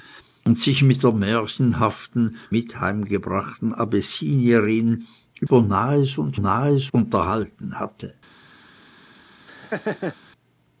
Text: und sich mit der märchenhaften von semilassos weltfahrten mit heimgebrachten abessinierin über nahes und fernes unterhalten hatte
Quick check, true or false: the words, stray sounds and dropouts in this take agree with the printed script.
false